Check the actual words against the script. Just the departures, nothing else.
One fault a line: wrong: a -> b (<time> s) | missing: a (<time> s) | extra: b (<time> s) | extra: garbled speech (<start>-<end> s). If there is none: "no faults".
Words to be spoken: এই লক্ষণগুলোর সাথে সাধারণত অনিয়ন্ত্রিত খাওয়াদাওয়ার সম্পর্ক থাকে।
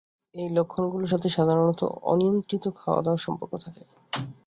no faults